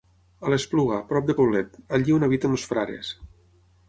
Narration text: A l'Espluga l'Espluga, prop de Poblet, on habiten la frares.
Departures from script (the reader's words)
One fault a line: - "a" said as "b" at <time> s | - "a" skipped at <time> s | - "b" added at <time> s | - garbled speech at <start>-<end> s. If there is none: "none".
- "l'Espluga" skipped at 0.9 s
- "allí" added at 2.0 s
- "la" said as "els" at 2.6 s